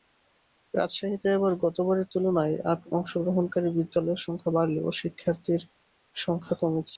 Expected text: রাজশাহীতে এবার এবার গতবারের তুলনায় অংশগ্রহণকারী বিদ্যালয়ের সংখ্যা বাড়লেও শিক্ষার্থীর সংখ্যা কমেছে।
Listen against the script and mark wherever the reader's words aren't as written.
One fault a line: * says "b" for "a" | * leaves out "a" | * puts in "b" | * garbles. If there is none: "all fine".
* leaves out "এবার"